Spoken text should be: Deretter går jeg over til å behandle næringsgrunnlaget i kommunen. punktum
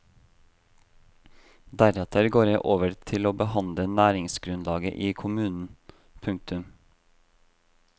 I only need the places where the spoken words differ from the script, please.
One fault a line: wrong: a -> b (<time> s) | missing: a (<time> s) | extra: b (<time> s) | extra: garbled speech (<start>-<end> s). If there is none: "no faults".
no faults